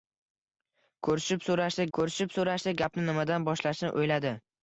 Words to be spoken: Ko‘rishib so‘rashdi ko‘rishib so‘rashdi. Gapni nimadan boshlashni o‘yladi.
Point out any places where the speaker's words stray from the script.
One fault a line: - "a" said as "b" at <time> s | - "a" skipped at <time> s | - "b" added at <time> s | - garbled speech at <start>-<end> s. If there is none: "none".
none